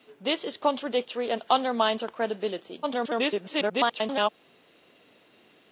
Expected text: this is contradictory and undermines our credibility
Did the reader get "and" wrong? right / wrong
right